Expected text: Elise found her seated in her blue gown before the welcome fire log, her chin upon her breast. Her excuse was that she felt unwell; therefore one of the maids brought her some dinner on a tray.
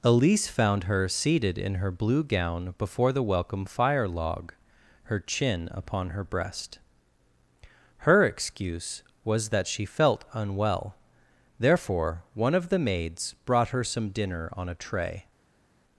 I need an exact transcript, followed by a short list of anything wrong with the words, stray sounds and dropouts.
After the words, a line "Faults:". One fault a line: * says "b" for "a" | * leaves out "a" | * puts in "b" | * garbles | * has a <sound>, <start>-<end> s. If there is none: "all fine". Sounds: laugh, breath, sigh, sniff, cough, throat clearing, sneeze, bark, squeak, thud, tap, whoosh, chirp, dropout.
Elise found her seated in her blue gown before the welcome fire log, her chin upon her breast. Her excuse was that she felt unwell; therefore one of the maids brought her some dinner on a tray.
Faults:
all fine